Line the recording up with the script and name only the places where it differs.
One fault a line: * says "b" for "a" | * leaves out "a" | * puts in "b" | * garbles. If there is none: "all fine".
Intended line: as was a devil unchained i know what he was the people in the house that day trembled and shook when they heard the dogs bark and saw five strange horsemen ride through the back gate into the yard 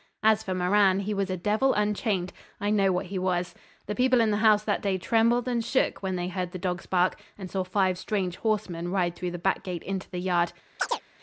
* puts in "for moran he"